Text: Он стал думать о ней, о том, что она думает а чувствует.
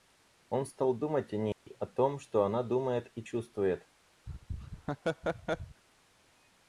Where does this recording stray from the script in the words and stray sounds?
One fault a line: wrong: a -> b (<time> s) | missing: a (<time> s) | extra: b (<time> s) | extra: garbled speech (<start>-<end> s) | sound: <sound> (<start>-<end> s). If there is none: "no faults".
sound: dropout (1.5-1.7 s)
wrong: а -> и (3.1 s)
sound: laugh (4.3-5.8 s)